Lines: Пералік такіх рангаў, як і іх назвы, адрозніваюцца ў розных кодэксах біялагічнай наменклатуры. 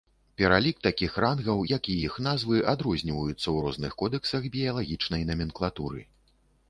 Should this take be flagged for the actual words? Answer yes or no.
no